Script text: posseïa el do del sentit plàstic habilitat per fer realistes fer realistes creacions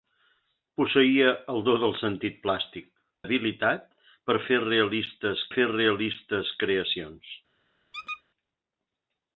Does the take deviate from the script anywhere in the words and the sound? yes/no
yes